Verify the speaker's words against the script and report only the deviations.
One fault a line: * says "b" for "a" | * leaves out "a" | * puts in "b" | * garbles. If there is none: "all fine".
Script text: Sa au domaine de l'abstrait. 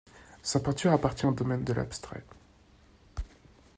* puts in "peinture appartient"